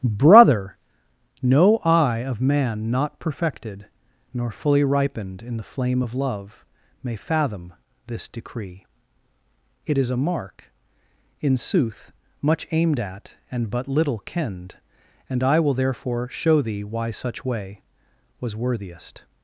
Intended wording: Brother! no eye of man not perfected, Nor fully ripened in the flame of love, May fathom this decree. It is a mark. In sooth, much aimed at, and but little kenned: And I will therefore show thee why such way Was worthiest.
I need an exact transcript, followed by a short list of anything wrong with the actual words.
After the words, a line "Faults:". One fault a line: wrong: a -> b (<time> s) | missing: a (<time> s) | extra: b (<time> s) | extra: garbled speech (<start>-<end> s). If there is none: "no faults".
Brother! no eye of man not perfected, Nor fully ripened in the flame of love, May fathom this decree. It is a mark. In sooth, much aimed at, and but little kenned: And I will therefore show thee why such way Was worthiest.
Faults:
no faults